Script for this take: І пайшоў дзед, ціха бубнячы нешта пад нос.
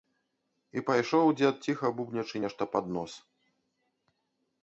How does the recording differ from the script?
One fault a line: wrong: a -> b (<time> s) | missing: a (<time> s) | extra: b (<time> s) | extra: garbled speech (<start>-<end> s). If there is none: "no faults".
no faults